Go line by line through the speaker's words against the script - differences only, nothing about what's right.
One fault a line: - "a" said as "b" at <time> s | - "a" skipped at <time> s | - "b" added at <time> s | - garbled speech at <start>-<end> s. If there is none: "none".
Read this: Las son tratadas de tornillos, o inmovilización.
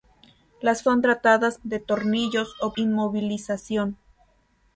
none